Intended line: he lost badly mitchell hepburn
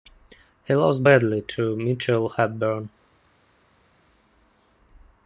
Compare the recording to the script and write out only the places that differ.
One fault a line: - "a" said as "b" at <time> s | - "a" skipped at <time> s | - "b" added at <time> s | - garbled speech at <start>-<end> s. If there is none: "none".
- "to" added at 1.4 s